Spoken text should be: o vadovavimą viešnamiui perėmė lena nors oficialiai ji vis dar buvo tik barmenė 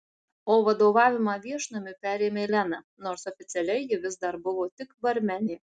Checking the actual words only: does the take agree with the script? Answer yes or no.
yes